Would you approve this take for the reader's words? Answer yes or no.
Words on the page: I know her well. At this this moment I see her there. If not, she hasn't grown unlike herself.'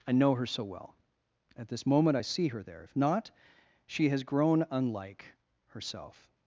no